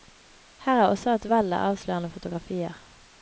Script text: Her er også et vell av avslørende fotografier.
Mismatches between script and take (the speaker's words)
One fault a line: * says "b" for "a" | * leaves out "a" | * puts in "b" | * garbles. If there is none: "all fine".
all fine